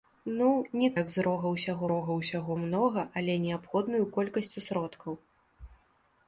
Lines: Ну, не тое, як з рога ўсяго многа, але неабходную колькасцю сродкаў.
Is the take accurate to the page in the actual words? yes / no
no